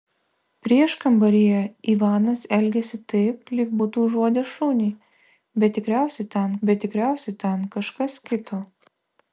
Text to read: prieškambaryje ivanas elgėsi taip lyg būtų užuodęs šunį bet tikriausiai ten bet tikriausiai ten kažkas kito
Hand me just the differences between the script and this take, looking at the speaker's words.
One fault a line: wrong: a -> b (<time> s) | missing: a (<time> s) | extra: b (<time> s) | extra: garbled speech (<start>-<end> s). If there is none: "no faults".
no faults